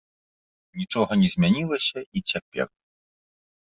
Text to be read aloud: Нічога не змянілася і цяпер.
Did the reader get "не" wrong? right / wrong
right